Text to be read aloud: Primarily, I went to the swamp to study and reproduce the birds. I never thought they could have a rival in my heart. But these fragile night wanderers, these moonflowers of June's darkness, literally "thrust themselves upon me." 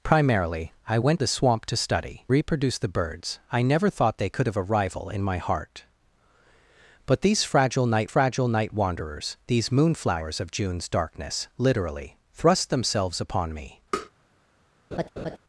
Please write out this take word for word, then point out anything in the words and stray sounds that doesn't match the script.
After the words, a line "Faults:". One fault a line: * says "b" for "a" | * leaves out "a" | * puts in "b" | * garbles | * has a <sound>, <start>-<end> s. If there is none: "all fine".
Primarily, I went the swamp to study reproduce the birds. I never thought they could have a rival in my heart. But these fragile night fragile night wanderers, these moonflowers of June's darkness, literally "thrust themselves upon me."
Faults:
* leaves out "to"
* leaves out "and"
* puts in "fragile night"
* has a tap, 13.9-14.1 s
* has a laugh, 14.9-15.4 s